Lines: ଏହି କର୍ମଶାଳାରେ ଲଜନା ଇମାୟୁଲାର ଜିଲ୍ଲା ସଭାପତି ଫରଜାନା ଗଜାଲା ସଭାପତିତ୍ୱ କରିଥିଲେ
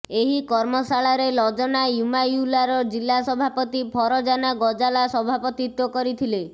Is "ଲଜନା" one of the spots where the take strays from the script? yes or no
no